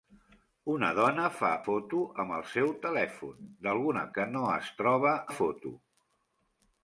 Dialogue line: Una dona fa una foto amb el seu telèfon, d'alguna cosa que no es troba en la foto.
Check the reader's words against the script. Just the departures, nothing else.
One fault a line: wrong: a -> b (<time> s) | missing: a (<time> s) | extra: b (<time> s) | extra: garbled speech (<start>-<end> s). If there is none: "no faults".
missing: una (1.5 s)
missing: cosa (4.1 s)
missing: en (5.2 s)